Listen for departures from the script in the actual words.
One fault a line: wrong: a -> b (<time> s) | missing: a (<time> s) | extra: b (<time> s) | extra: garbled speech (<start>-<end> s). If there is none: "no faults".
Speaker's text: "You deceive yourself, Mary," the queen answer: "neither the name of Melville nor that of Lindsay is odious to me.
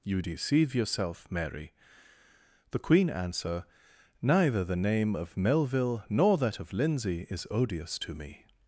no faults